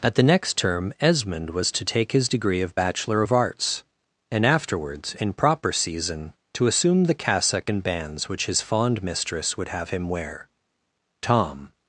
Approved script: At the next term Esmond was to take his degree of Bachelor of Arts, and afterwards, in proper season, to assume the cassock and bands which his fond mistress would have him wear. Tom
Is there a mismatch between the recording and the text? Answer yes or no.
no